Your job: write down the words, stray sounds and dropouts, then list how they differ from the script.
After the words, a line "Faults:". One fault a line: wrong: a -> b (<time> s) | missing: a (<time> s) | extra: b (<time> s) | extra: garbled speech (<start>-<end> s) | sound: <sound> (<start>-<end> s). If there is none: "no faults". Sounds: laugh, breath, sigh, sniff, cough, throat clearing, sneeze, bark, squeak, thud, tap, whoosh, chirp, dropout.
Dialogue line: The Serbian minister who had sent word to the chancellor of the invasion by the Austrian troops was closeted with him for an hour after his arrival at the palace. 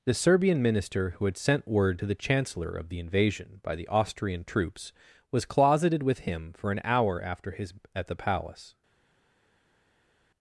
The Serbian minister who had sent word to the chancellor of the invasion by the Austrian troops was closeted with him for an hour after his at the palace.
Faults:
missing: arrival (7.7 s)